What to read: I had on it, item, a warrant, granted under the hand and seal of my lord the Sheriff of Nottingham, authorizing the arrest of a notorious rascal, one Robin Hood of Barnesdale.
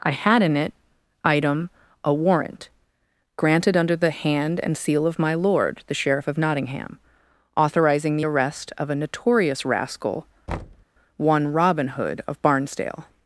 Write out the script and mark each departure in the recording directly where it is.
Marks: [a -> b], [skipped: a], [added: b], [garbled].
I had [on -> in] it, item, a warrant, granted under the hand and seal of my lord the Sheriff of Nottingham, authorizing the arrest of a notorious rascal, one Robin Hood of Barnesdale.